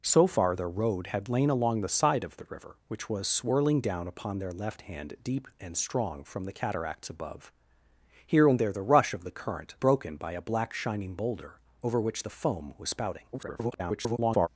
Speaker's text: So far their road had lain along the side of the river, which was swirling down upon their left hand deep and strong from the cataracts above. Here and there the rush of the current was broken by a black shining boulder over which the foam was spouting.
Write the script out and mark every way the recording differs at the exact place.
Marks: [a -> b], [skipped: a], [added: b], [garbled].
So far their road had lain along the side of the river, which was swirling down upon their left hand deep and strong from the cataracts above. Here and there the rush of the current [skipped: was] broken by a black shining boulder over which the foam was spouting. [garbled]